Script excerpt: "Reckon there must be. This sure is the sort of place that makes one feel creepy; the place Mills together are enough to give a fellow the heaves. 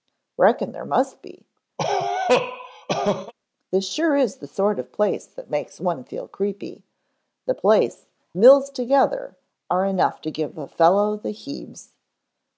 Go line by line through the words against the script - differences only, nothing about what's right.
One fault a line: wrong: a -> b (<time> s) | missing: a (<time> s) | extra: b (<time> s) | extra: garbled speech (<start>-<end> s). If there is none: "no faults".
no faults